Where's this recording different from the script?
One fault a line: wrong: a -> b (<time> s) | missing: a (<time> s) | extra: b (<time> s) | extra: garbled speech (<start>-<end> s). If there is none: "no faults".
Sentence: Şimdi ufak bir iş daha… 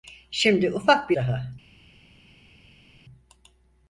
missing: iş (1.2 s)